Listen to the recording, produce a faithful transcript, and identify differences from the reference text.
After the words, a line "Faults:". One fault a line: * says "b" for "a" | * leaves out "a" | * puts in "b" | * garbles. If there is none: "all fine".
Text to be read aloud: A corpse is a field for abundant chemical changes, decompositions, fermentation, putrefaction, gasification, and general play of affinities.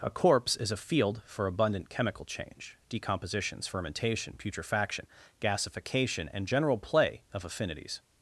A corpse is a field for abundant chemical change, decompositions, fermentation, putrefaction, gasification, and general play of affinities.
Faults:
* says "change" for "changes"